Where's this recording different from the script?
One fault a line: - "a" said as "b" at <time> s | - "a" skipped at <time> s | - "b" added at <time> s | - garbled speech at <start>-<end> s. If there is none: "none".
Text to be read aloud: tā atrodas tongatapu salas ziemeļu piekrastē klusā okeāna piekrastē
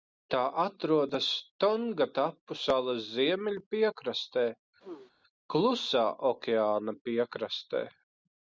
none